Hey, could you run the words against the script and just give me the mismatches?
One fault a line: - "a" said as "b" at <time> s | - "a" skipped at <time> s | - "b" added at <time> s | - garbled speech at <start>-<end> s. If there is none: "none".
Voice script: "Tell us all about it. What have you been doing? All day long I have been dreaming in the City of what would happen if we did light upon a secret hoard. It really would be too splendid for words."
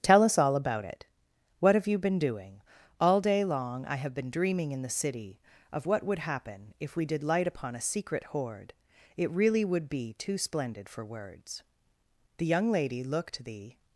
- "The young lady looked the" added at 12.4 s